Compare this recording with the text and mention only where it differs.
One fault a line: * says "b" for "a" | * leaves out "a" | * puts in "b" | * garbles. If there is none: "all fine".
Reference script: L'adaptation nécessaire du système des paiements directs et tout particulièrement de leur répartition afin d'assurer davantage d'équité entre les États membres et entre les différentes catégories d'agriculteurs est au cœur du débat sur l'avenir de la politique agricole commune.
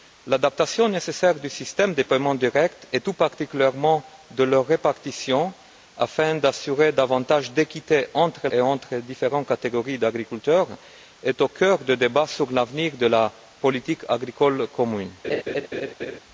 * leaves out "les États membres"